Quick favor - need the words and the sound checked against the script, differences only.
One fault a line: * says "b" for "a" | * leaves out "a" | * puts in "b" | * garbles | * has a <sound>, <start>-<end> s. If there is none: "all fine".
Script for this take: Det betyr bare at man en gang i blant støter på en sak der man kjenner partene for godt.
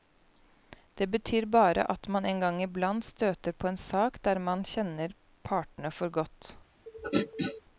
* has a throat clearing, 6.9-7.6 s